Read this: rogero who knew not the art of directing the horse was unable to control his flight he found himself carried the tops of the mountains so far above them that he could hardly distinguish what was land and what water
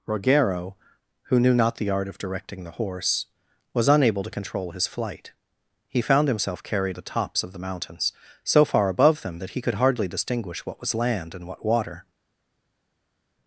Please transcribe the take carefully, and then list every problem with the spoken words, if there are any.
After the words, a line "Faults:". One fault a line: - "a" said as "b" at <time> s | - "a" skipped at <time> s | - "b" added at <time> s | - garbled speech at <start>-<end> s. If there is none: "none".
rogero who knew not the art of directing the horse was unable to control his flight he found himself carried the tops of the mountains so far above them that he could hardly distinguish what was land and what water
Faults:
none